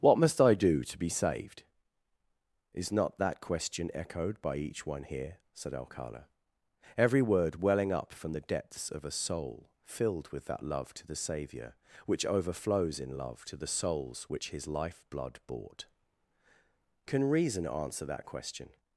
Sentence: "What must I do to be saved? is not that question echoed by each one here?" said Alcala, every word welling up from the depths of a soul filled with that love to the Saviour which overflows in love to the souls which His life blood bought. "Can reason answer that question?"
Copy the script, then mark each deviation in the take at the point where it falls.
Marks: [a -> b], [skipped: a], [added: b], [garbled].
"What must I do to be saved? is not that question echoed by each one here?" said Alcala, every word welling up from the depths of a soul filled with that love to the Saviour which overflows in love to the souls which His life blood bought. "Can reason answer that question?"